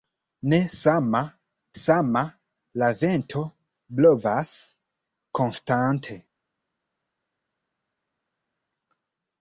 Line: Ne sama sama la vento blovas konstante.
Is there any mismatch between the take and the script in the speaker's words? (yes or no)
no